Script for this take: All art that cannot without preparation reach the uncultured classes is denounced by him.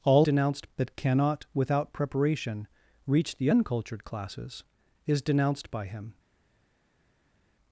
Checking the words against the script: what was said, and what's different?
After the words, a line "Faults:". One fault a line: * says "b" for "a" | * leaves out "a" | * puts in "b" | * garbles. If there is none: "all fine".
All denounced that cannot without preparation reach the uncultured classes is denounced by him.
Faults:
* says "denounced" for "art"